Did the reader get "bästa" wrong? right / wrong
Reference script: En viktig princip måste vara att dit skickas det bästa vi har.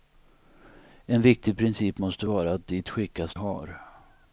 wrong